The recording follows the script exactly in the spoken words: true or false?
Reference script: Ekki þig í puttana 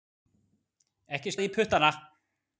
true